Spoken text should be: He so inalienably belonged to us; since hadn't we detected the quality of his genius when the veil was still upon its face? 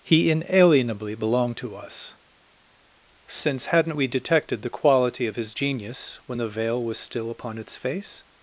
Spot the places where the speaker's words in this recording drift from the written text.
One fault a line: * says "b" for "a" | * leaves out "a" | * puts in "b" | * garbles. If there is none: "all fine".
* leaves out "so"